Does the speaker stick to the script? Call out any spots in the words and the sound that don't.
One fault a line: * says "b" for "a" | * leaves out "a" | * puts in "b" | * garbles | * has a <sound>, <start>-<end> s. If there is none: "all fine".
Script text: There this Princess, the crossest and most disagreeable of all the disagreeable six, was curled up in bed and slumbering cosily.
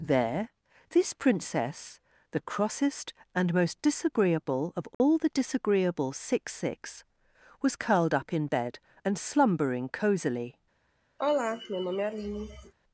* has a dropout, 4.9-5.0 s
* puts in "six"
* has a sigh, 11.2-12.7 s